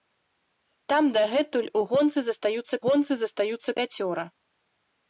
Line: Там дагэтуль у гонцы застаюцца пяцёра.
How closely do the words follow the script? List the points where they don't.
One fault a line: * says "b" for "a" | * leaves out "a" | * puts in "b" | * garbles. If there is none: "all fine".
* puts in "гонцы застаюцца"